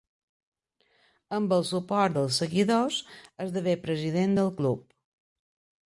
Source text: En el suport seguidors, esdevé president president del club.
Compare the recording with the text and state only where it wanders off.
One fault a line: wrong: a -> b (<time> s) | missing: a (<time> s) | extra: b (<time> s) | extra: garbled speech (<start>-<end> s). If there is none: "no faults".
wrong: En -> Amb (1.4 s)
extra: dels (2.2 s)
missing: president (4.4 s)